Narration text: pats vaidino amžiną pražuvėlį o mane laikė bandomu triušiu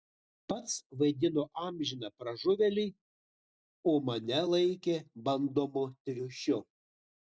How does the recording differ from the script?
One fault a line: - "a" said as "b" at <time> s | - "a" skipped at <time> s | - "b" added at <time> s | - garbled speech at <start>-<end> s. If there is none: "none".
none